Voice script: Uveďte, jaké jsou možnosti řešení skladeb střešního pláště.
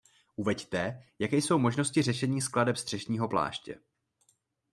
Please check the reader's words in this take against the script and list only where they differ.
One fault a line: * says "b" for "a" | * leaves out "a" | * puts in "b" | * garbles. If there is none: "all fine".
all fine